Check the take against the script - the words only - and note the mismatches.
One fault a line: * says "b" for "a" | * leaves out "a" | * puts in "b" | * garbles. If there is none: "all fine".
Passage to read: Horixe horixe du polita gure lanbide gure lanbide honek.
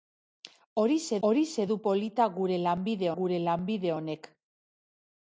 all fine